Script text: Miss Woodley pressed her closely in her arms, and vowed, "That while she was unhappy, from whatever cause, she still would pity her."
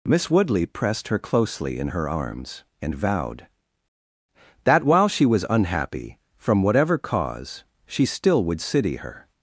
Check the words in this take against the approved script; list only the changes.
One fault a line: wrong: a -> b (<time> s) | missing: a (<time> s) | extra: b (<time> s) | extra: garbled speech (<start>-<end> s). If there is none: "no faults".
wrong: pity -> city (8.6 s)